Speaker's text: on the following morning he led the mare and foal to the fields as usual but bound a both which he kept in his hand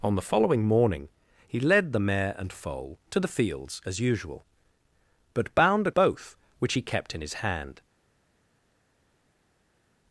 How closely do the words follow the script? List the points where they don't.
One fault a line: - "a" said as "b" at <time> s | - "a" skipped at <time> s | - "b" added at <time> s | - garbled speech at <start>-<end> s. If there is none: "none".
none